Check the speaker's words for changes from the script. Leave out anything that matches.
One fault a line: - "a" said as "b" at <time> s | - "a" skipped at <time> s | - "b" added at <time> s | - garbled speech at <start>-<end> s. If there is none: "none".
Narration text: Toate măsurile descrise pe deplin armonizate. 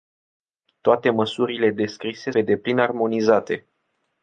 none